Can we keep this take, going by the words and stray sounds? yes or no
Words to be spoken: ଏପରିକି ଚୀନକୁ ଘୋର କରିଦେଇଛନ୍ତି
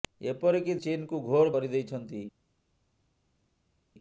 yes